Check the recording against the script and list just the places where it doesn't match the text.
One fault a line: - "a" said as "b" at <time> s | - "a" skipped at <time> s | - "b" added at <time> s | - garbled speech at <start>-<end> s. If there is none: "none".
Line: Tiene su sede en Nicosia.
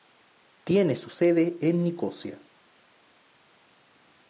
none